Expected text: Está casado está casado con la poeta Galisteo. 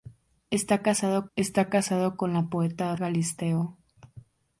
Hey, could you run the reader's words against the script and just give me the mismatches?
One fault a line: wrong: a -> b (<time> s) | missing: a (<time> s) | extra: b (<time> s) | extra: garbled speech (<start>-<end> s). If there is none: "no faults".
no faults